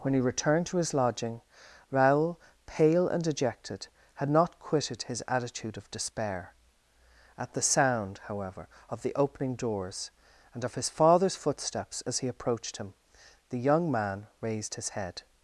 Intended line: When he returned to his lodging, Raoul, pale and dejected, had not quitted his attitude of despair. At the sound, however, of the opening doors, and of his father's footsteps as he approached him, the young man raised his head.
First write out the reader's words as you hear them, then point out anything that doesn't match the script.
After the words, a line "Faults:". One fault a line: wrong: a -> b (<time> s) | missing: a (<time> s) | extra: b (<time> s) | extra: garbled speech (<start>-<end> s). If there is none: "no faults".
When he returned to his lodging, Raoul, pale and dejected, had not quitted his attitude of despair. At the sound, however, of the opening doors, and of his father's footsteps as he approached him, the young man raised his head.
Faults:
no faults